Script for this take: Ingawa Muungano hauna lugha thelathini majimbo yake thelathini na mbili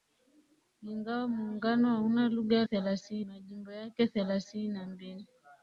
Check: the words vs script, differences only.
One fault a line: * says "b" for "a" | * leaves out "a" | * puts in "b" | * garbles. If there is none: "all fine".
all fine